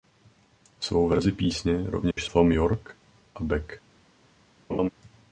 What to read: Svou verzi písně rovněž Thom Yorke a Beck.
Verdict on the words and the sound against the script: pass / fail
fail